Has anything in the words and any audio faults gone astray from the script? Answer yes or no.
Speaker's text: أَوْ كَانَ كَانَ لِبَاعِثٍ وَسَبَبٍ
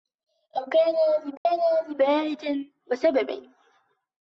yes